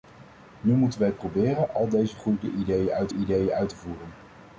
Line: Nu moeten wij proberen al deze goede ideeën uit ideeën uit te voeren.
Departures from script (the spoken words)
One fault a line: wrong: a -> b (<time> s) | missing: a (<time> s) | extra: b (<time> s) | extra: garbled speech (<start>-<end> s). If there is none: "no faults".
no faults